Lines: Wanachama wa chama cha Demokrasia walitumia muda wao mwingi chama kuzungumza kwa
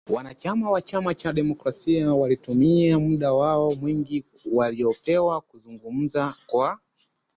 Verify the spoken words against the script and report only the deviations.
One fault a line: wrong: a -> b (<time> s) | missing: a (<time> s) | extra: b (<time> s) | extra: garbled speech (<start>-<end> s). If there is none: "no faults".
wrong: chama -> waliopewa (4.5 s)